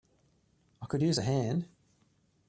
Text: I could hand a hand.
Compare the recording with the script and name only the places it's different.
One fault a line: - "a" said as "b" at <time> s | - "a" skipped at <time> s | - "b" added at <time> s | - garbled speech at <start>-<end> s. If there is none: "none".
- "hand" said as "use" at 1.0 s